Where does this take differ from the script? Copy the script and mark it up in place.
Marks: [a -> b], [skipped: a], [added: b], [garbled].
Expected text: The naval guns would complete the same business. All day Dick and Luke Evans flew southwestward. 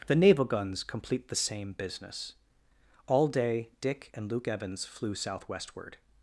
The naval guns [skipped: would] complete the same business. All day Dick and Luke Evans flew southwestward.